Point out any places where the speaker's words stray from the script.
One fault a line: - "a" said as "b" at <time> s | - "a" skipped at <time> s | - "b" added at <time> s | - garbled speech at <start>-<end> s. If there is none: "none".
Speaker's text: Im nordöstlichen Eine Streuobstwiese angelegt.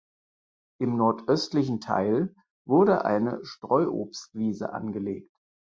- "Teil wurde" added at 1.8 s